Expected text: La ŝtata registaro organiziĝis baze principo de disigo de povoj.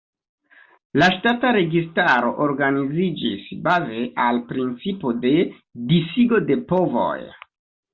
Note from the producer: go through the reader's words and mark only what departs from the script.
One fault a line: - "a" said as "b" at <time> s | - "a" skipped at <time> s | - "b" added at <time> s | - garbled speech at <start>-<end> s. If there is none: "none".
- "al" added at 4.3 s